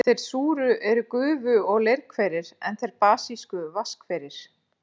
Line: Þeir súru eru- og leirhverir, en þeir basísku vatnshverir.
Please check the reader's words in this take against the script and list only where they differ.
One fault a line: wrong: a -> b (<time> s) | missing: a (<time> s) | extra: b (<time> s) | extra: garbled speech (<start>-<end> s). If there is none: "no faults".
extra: gufu (1.1 s)